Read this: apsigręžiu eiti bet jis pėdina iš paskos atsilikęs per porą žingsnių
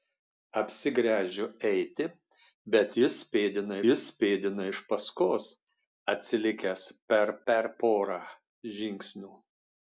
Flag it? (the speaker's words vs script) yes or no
yes